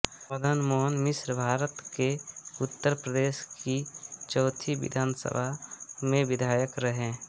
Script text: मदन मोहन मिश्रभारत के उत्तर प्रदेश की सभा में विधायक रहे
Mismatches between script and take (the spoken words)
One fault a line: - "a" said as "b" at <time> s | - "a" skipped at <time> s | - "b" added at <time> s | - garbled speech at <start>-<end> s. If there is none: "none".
- "चौथी विधानसभा" added at 4.3 s